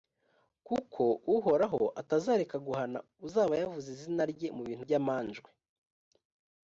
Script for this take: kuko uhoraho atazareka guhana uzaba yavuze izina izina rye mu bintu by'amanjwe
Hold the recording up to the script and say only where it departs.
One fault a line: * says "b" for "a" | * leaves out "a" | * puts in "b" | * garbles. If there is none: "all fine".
* leaves out "izina"